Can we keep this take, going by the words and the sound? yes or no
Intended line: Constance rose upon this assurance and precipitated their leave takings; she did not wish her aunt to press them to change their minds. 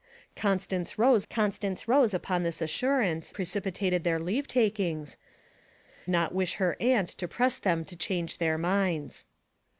no